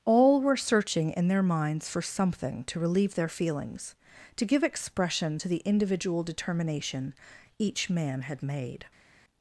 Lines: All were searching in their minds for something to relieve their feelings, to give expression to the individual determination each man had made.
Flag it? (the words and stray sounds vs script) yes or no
no